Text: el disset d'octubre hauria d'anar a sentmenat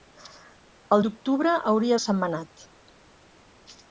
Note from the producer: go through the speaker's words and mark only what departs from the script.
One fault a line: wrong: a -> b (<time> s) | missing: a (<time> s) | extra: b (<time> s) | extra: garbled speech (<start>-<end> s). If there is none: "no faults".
missing: disset (1.0 s)
missing: d'anar (2.0 s)